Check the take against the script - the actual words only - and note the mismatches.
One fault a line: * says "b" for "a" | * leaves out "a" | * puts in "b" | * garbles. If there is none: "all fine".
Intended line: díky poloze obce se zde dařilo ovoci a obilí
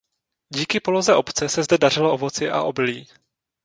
all fine